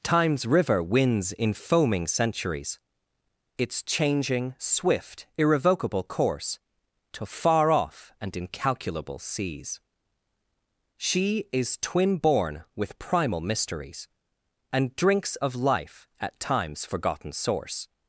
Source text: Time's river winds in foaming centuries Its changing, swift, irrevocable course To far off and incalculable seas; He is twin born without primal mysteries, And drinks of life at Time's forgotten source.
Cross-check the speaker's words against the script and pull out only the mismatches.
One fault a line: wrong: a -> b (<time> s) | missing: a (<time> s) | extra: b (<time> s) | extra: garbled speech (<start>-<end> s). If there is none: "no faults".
wrong: He -> She (11.0 s)
wrong: without -> with (12.7 s)